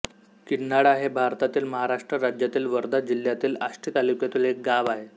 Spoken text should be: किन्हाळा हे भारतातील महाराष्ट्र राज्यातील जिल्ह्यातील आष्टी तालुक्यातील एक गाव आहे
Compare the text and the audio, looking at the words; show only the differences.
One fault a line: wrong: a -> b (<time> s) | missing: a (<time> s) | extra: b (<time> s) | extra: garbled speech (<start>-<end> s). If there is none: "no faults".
extra: वर्धा (2.7 s)